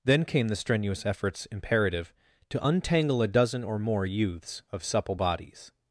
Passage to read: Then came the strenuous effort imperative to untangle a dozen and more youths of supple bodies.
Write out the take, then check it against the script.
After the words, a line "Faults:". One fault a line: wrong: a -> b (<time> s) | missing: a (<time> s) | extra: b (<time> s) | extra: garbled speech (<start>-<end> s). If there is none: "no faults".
Then came the strenuous efforts imperative to untangle a dozen or more youths of supple bodies.
Faults:
wrong: effort -> efforts (1.1 s)
wrong: and -> or (3.6 s)